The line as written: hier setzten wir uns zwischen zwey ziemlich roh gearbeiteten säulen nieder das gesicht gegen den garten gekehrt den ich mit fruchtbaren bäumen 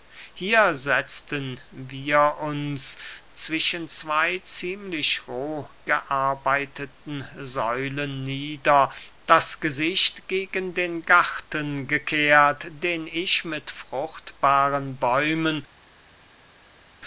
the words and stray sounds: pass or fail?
pass